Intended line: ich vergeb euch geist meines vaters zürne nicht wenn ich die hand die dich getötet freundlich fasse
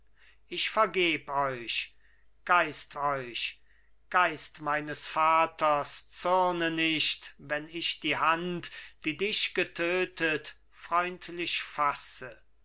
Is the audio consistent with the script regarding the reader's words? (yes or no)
no